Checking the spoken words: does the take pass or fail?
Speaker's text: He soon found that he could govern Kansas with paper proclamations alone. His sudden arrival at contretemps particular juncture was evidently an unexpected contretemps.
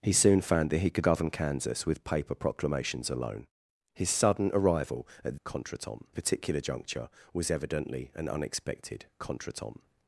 pass